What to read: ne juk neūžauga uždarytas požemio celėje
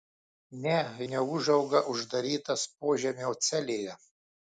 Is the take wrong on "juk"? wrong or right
wrong